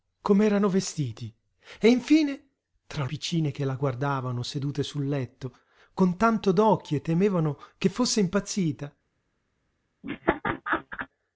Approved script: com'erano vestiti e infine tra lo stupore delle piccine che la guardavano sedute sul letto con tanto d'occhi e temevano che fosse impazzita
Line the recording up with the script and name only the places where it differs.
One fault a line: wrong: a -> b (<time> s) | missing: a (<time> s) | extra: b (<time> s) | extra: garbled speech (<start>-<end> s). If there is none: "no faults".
missing: lo stupore delle (3.0 s)